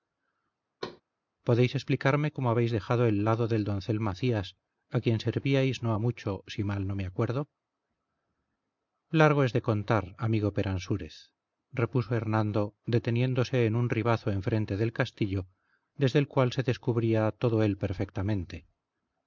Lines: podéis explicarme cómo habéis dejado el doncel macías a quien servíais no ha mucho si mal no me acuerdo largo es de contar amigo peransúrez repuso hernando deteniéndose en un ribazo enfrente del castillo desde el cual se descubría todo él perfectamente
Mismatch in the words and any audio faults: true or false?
true